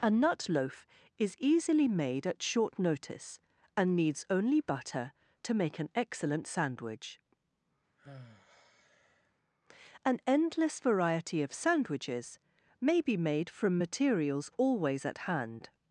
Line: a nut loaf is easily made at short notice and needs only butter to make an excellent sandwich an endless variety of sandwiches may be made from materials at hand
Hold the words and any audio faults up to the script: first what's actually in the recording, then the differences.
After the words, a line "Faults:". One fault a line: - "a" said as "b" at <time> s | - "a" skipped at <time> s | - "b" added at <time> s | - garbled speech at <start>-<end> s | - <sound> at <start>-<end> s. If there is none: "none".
a nut loaf is easily made at short notice and needs only butter to make an excellent sandwich an endless variety of sandwiches may be made from materials always at hand
Faults:
- sigh at 8.0-9.3 s
- "always" added at 14.6 s